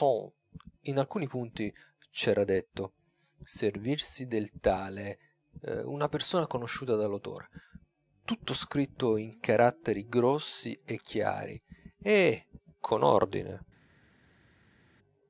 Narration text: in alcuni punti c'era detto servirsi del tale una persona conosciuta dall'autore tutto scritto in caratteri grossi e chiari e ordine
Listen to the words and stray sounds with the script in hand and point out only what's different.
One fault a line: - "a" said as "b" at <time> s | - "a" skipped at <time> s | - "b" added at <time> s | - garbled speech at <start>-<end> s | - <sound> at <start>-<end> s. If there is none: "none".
- "con" added at 12.8 s